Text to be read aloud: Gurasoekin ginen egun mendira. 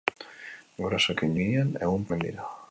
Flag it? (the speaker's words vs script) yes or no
no